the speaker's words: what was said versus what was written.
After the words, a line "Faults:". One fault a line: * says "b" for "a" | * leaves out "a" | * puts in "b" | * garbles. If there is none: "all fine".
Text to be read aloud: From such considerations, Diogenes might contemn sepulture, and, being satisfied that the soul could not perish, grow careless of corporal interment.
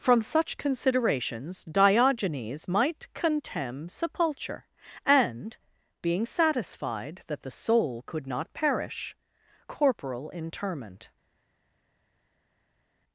From such considerations, Diogenes might contemn sepulture, and, being satisfied that the soul could not perish, corporal interment.
Faults:
* leaves out "grow careless of"